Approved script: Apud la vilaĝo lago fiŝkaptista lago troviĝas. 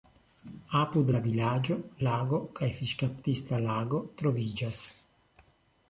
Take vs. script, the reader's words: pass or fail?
fail